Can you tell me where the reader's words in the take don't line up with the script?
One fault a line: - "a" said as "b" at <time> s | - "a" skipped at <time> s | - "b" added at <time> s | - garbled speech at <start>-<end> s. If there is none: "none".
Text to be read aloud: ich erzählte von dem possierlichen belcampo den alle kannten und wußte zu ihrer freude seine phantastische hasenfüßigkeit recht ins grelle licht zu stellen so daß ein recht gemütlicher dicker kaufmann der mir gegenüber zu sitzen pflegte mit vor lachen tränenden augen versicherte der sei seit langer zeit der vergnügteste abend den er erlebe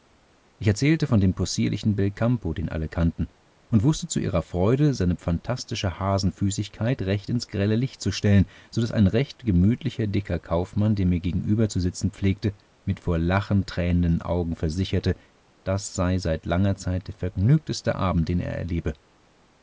- "der" said as "das" at 15.7 s